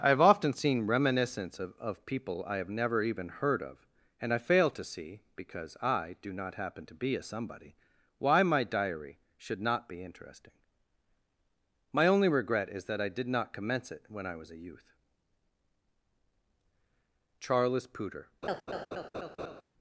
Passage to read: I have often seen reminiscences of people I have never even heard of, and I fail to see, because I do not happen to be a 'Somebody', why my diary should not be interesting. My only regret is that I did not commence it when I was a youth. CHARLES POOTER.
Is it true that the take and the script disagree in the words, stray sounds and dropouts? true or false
true